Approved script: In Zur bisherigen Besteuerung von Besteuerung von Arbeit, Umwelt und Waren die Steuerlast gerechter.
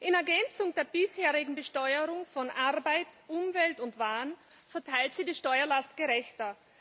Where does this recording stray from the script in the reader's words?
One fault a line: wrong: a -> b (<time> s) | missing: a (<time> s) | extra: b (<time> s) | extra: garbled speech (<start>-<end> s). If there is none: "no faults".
extra: Ergänzung (0.1 s)
missing: Besteuerung von (2.5 s)
extra: verteilt sie (4.7 s)